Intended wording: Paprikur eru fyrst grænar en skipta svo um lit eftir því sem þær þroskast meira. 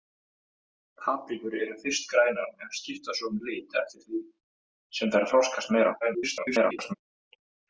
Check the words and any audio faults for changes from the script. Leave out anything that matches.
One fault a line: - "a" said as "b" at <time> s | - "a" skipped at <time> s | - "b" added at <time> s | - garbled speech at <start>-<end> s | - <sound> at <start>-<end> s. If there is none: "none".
- garbled speech at 6.0-6.9 s